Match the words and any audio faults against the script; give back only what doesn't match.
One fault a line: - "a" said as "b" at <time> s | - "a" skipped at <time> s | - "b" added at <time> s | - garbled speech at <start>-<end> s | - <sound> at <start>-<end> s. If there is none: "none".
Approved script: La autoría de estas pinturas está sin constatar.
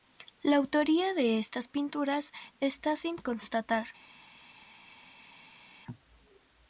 none